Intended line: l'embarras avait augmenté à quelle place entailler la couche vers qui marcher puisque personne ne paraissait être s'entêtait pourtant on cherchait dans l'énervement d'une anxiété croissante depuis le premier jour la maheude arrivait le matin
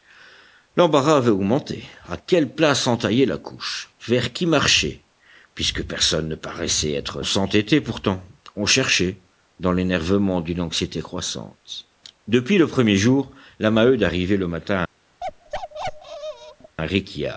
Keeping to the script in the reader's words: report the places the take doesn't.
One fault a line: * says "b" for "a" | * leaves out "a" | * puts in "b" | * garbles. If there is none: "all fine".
all fine